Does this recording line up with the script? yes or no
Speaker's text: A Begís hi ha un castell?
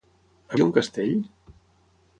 no